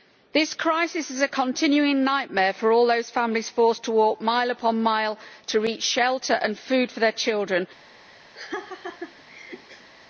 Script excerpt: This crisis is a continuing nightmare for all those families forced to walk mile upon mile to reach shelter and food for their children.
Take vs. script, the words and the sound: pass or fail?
fail